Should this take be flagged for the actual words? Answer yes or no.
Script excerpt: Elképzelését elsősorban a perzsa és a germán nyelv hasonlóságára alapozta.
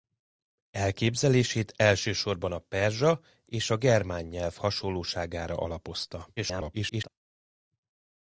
yes